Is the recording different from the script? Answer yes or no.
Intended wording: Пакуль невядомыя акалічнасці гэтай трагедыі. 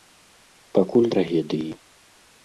yes